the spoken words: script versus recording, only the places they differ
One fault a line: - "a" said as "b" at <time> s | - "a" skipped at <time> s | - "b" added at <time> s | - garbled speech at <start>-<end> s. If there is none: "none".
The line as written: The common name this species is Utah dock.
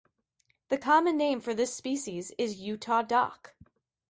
- "for" added at 1.4 s